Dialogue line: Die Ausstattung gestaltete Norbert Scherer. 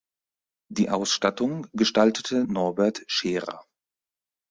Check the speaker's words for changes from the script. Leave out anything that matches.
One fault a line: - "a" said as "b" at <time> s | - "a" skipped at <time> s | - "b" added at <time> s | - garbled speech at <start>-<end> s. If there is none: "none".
none